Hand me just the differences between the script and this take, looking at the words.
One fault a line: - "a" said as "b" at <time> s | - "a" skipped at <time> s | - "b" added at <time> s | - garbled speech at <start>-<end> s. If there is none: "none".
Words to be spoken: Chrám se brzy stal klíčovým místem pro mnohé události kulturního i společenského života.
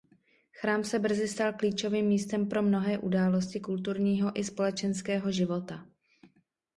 none